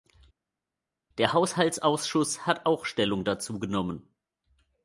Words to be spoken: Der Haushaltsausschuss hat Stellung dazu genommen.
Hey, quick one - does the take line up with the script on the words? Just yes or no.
no